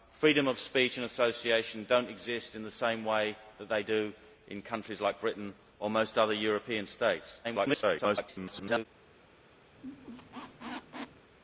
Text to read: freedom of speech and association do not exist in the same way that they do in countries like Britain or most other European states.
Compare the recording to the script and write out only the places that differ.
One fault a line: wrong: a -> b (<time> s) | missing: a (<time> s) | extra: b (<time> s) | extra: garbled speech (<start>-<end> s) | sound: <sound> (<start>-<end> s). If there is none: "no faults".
extra: garbled speech (7.4-8.9 s)
sound: squeak (9.7-11.3 s)